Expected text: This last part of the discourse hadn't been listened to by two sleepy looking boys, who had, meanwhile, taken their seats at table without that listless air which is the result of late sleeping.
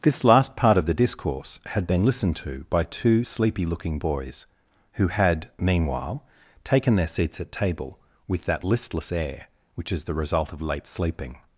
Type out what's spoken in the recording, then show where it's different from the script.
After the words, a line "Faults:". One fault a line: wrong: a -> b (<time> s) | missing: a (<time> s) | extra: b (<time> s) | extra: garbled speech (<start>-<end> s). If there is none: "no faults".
This last part of the discourse had been listened to by two sleepy looking boys, who had, meanwhile, taken their seats at table with that listless air which is the result of late sleeping.
Faults:
wrong: hadn't -> had (1.6 s)
wrong: without -> with (8.3 s)